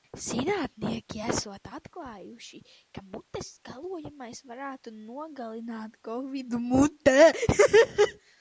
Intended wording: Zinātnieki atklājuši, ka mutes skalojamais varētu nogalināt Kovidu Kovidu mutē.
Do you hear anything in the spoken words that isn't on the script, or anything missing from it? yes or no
yes